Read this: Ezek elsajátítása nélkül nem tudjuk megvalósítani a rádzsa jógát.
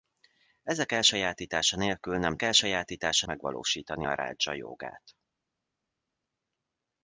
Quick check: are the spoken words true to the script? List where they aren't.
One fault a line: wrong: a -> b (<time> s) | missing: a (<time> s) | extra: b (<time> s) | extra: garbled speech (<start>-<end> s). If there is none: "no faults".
wrong: tudjuk -> elsajátítása (2.4 s)